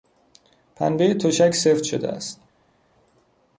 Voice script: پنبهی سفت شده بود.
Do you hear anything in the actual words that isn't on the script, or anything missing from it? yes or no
yes